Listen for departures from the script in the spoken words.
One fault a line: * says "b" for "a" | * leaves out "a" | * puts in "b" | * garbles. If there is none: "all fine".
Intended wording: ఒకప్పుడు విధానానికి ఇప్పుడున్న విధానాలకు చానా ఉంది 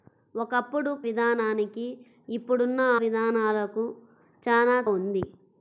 all fine